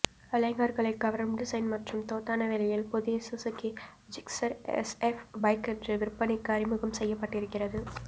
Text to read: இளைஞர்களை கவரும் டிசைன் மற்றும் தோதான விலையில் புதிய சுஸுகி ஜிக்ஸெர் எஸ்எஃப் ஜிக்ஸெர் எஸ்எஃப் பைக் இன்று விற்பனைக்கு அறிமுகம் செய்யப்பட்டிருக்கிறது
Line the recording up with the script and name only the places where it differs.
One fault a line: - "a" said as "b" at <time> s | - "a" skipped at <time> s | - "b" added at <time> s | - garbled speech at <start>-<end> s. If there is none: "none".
- "ஜிக்ஸெர் எஸ்எஃப்" skipped at 5.2 s